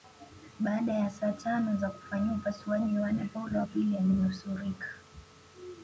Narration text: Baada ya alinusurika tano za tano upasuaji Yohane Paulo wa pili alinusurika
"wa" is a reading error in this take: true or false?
false